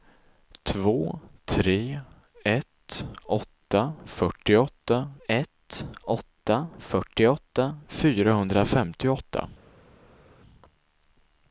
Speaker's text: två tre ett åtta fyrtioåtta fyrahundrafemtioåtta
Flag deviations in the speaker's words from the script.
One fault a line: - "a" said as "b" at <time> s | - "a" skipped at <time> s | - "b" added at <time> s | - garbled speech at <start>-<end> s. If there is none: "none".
- "ett åtta fyrtioåtta" added at 5.3 s